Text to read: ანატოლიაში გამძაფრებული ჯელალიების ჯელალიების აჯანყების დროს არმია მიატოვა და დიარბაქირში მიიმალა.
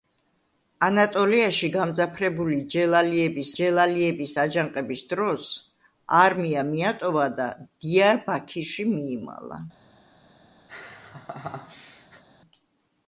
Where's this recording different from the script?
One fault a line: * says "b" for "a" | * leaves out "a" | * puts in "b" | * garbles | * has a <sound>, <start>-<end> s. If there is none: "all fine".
* has a laugh, 10.7-12.2 s